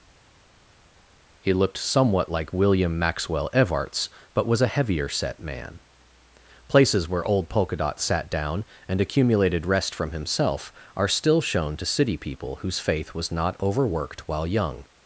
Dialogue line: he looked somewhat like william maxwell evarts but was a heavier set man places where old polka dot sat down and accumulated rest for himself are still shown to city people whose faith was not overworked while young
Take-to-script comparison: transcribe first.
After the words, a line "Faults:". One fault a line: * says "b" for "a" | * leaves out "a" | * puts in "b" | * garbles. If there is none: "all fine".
he looked somewhat like william maxwell evarts but was a heavier set man places where old polka dot sat down and accumulated rest from himself are still shown to city people whose faith was not overworked while young
Faults:
* says "from" for "for"